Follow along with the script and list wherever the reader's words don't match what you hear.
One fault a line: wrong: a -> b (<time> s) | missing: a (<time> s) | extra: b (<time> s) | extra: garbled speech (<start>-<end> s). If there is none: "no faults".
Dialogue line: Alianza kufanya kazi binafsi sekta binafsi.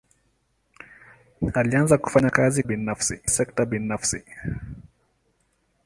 no faults